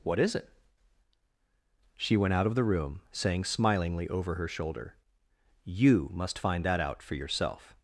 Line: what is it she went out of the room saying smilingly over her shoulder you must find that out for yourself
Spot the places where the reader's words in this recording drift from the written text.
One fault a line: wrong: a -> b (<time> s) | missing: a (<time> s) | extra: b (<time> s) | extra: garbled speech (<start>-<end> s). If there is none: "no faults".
no faults